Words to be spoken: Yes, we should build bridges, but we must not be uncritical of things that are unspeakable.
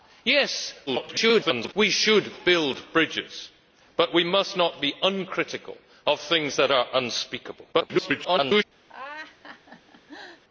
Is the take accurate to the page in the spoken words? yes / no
no